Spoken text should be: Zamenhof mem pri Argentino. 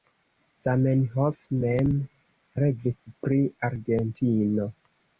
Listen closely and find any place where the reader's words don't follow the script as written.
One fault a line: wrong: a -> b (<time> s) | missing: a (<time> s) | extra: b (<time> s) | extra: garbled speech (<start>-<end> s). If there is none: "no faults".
extra: revis (2.6 s)